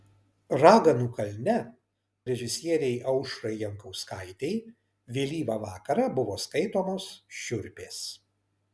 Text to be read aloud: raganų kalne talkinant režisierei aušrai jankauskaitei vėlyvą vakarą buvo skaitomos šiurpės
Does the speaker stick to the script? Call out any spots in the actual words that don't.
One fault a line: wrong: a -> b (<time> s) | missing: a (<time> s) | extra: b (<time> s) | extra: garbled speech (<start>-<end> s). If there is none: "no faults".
missing: talkinant (1.6 s)